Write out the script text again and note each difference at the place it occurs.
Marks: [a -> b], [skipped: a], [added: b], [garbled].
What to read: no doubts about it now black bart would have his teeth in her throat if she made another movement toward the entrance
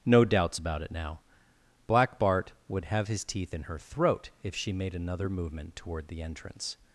no doubts about it now black bart would have his teeth in her throat if she made another movement toward the entrance